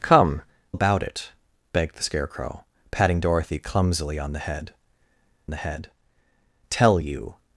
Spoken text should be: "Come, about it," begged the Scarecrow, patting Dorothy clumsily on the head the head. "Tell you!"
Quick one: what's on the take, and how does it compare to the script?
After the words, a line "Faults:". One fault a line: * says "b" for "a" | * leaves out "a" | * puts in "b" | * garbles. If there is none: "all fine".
"Come, about it," begged the Scarecrow, patting Dorothy clumsily on the head the head. "Tell you!"
Faults:
all fine